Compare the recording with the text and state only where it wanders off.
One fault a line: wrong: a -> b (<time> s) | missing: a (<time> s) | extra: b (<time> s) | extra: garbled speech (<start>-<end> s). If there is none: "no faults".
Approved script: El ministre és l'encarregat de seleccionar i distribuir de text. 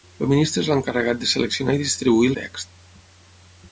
no faults